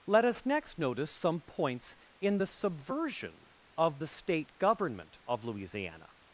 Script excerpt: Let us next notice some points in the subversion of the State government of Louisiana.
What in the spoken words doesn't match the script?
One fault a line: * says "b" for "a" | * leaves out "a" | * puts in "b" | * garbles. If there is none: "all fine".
all fine